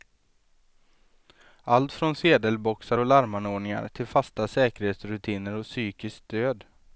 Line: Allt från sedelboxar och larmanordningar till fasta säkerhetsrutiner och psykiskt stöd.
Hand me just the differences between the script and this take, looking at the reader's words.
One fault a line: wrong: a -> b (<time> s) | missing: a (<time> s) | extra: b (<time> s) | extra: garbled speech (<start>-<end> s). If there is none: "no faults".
no faults